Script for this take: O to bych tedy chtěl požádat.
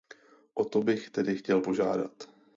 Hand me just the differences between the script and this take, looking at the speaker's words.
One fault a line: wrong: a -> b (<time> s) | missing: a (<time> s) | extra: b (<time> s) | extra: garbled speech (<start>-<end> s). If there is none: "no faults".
no faults